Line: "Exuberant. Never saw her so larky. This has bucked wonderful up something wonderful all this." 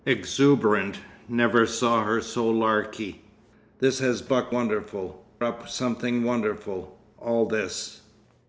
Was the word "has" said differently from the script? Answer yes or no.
no